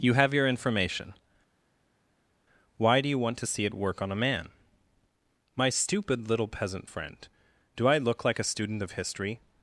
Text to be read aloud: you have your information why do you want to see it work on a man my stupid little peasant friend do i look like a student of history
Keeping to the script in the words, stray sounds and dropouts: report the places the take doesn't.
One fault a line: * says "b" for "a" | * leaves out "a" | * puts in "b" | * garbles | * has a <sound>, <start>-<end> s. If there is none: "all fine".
all fine